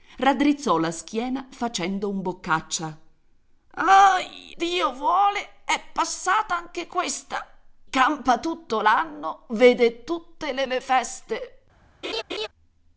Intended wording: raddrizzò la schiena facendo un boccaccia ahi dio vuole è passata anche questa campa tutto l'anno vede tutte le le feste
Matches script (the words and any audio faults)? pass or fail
fail